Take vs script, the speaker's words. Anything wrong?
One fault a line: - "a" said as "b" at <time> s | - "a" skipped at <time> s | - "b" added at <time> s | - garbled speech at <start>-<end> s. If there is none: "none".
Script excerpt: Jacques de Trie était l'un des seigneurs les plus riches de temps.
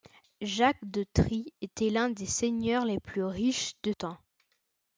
none